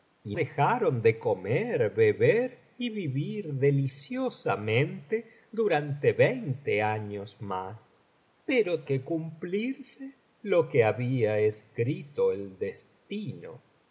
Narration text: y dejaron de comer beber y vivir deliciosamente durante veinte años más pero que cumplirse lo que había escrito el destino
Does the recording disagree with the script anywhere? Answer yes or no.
no